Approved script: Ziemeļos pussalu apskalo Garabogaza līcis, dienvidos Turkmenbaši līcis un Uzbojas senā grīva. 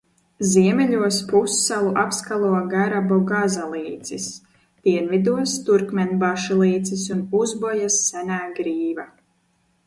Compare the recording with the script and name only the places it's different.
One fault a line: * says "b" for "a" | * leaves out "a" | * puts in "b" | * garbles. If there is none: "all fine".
all fine